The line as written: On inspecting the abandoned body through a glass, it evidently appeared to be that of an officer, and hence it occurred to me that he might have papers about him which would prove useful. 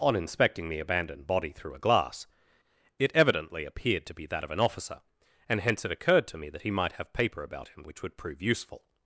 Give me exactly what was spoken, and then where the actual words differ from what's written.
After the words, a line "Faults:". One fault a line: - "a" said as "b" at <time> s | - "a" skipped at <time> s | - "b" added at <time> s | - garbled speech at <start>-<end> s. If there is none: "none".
On inspecting the abandoned body through a glass, it evidently appeared to be that of an officer, and hence it occurred to me that he might have paper about him which would prove useful.
Faults:
- "papers" said as "paper" at 7.1 s